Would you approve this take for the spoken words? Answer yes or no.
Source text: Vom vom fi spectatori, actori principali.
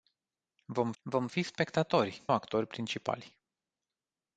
yes